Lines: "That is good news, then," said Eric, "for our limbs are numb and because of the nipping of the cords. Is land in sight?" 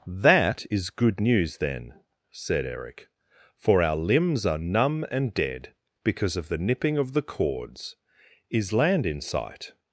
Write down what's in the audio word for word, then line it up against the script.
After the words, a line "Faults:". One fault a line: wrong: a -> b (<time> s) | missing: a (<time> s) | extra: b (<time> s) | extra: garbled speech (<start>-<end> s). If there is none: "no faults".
"That is good news, then," said Eric, "for our limbs are numb and dead because of the nipping of the cords. Is land in sight?"
Faults:
extra: dead (5.3 s)